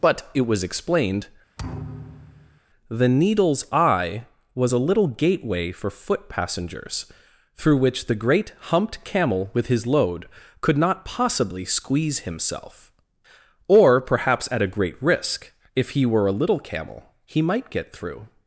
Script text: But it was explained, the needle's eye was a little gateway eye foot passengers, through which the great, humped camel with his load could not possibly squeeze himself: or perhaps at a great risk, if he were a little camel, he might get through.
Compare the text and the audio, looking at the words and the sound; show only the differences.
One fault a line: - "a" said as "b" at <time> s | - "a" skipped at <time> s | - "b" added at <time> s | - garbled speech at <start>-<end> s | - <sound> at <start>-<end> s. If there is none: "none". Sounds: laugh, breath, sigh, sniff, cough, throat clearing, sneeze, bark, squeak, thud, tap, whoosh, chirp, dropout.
- thud at 1.6-2.6 s
- "eye" said as "for" at 5.7 s